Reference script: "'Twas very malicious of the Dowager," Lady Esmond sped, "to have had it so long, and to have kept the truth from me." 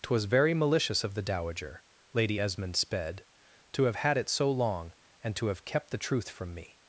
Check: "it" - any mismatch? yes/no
no